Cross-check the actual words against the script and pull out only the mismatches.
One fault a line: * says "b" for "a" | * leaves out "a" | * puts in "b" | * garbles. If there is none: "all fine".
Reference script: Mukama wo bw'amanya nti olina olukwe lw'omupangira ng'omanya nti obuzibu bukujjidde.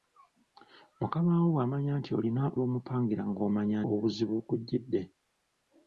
* leaves out "olukwe"
* leaves out "nti"